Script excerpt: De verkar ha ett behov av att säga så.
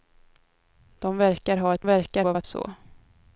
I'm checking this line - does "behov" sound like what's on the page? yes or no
no